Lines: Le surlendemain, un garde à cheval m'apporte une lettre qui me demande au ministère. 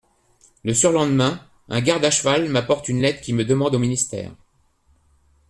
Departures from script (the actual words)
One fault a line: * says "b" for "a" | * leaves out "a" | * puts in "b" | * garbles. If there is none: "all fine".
all fine